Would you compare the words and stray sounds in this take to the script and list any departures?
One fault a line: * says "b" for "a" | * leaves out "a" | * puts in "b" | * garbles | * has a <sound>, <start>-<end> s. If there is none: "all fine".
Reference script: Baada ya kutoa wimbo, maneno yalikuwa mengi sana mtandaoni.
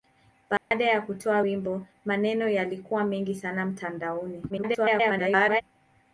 * has a dropout, 0.6-0.7 s
* garbles